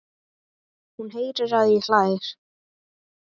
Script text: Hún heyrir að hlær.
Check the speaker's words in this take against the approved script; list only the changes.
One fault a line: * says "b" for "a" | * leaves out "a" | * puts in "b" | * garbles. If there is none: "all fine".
* puts in "hann"